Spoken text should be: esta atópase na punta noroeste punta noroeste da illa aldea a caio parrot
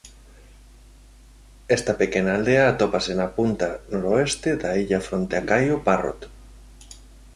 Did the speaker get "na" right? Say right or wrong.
right